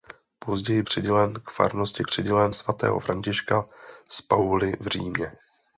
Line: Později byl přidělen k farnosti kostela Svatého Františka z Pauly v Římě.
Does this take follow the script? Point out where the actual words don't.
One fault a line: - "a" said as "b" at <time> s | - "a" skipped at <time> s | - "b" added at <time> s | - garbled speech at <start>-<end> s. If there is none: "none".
- "byl" skipped at 0.8 s
- "kostela" said as "přidělen" at 2.0 s